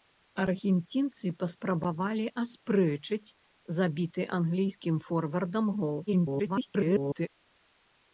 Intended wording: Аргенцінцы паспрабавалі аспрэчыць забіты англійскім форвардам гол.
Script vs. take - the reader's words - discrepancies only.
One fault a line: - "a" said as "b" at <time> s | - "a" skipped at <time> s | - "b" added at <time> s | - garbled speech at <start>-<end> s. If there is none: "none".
- garbled speech at 6.1-7.3 s